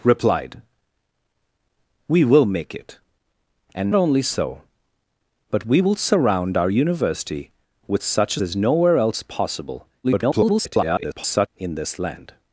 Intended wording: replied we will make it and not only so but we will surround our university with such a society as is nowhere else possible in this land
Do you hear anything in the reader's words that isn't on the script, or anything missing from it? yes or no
yes